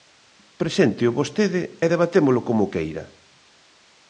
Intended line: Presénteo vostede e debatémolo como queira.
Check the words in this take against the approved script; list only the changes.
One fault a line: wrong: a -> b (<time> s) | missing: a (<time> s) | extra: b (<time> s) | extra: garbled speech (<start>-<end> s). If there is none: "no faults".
no faults